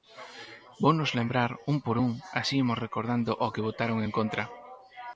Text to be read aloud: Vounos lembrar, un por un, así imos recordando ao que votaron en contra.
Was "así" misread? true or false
false